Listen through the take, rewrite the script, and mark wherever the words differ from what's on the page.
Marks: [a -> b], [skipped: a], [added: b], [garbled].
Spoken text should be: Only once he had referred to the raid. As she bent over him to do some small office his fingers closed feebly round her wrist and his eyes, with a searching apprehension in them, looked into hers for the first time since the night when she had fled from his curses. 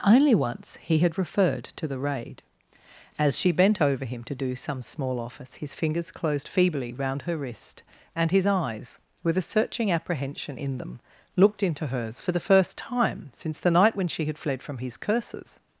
Only once he had referred to the raid. As she bent over him to do some small office his fingers closed feebly round her wrist and his eyes, with a searching apprehension in them, looked into hers for the first time since the night when she had fled from his curses.